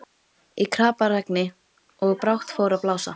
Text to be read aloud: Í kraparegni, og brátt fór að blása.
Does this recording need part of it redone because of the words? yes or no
no